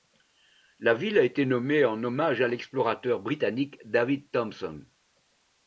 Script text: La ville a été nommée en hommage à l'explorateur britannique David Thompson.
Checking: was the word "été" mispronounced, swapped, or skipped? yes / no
no